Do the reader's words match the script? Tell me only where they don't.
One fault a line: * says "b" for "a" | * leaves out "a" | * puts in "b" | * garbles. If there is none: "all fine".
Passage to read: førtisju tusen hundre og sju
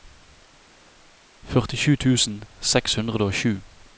* puts in "seks"